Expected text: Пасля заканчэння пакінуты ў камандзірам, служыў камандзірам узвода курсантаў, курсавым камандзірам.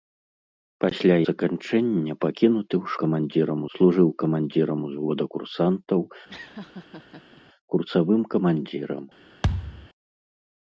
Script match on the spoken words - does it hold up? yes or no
yes